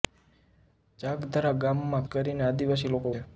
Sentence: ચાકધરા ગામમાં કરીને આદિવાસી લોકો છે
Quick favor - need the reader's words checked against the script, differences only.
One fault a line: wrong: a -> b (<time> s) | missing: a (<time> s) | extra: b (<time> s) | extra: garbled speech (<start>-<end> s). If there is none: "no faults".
no faults